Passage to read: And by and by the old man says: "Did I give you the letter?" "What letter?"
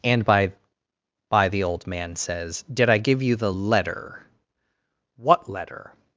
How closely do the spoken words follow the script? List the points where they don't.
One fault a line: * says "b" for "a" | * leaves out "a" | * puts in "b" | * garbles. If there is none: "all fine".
* leaves out "and"